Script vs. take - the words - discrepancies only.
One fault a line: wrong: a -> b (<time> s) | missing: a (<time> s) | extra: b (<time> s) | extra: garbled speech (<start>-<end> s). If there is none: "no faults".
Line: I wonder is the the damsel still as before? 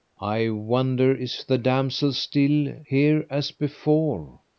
missing: the (1.6 s)
extra: here (2.9 s)